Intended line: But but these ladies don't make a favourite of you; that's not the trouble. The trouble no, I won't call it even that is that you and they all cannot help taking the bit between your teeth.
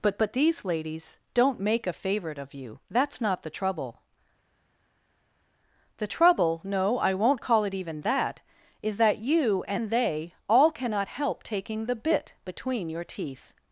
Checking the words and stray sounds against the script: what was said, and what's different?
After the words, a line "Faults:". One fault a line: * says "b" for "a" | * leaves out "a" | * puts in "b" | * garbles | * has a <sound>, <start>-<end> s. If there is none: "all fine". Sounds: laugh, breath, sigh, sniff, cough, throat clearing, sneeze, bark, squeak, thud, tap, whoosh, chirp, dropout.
But but these ladies don't make a favourite of you; that's not the trouble. The trouble no, I won't call it even that is that you and they all cannot help taking the bit between your teeth.
Faults:
all fine